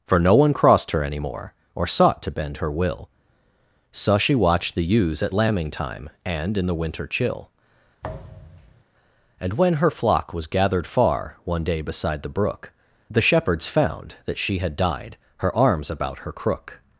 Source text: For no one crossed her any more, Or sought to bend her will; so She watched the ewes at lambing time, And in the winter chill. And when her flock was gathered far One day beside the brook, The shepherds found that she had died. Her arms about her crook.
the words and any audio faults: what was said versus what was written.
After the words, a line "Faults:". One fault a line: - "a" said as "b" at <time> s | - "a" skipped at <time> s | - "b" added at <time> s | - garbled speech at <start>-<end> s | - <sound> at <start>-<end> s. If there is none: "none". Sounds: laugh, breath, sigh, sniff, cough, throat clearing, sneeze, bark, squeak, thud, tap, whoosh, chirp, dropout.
For no one crossed her any more, Or sought to bend her will; so She watched the ewes at lambing time, And in the winter chill. And when her flock was gathered far One day beside the brook, The shepherds found that she had died. Her arms about her crook.
Faults:
- thud at 8.0-8.8 s